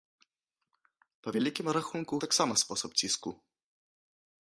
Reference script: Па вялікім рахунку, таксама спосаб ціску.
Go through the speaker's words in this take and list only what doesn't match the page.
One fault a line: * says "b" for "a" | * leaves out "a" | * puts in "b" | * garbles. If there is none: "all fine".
all fine